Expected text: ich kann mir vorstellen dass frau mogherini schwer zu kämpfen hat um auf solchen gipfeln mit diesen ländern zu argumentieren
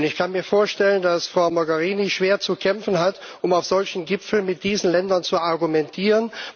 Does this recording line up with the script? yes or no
yes